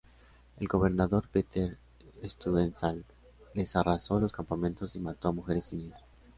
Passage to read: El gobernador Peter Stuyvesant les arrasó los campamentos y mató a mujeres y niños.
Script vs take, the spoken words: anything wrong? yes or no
no